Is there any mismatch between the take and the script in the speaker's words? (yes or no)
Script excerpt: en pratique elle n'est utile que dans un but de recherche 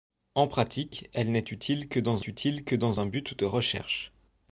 yes